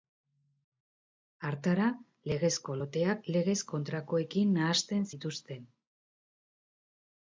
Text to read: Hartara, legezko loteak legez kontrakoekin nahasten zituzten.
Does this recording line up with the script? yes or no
yes